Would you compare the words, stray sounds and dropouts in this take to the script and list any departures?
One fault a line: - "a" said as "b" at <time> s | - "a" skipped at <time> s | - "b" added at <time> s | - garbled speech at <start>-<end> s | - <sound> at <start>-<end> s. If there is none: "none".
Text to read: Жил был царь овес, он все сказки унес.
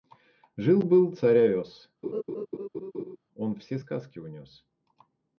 - laugh at 2.0-3.2 s